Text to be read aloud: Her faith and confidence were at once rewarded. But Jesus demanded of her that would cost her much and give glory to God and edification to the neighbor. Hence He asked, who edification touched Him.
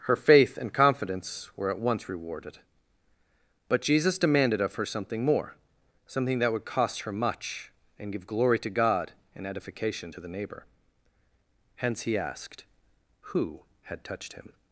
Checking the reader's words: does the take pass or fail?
fail